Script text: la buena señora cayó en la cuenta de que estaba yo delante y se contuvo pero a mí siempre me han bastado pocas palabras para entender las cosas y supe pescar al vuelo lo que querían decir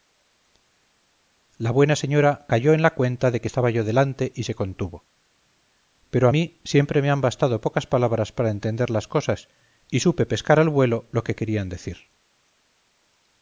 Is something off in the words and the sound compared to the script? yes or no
no